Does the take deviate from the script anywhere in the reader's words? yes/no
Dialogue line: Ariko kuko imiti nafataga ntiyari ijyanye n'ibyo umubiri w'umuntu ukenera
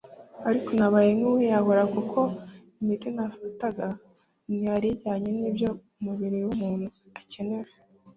yes